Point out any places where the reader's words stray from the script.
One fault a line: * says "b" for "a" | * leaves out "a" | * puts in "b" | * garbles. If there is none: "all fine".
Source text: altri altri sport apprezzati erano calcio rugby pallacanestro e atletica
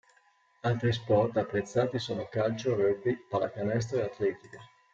* leaves out "altri"
* says "sono" for "erano"